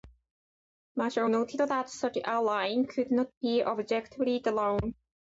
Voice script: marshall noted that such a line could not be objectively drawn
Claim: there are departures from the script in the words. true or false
false